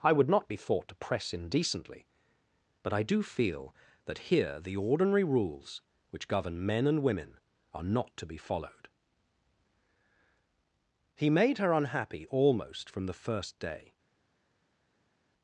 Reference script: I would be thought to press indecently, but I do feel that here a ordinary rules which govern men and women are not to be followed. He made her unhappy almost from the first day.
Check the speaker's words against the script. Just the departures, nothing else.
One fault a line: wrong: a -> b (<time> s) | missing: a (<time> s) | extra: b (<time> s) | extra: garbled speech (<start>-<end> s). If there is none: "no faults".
extra: not (0.3 s)
wrong: a -> the (4.6 s)